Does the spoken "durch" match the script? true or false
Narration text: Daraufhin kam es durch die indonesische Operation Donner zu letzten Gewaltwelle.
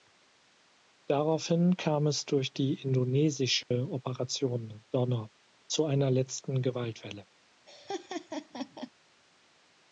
true